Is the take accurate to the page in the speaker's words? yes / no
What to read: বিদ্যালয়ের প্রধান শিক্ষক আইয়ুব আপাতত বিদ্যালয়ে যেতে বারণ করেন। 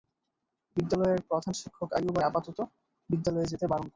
yes